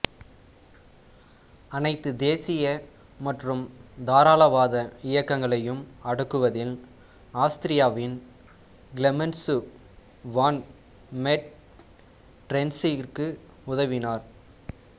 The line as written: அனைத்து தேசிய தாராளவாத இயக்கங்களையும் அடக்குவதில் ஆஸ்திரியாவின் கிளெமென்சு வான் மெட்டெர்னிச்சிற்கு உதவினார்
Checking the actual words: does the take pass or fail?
fail